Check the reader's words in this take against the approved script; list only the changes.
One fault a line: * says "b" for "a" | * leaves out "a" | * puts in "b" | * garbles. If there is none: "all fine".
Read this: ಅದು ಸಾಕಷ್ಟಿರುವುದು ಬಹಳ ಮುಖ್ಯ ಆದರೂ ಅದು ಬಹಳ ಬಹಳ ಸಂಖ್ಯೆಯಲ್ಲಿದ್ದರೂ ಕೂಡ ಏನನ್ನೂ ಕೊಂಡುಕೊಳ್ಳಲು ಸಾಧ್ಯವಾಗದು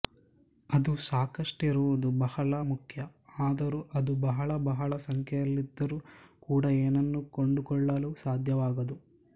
all fine